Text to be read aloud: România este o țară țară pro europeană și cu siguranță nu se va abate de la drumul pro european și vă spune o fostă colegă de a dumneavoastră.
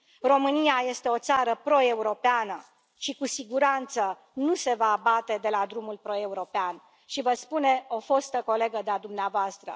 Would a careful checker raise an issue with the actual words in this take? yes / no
yes